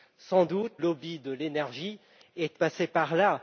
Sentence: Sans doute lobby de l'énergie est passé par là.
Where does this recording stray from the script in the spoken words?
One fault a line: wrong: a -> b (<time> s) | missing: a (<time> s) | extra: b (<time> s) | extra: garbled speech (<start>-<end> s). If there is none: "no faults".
no faults